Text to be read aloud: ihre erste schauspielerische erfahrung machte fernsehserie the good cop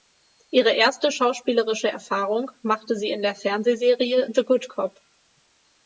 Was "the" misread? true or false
false